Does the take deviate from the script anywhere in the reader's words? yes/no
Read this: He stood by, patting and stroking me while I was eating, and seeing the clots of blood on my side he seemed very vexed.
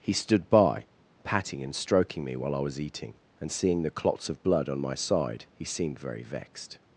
no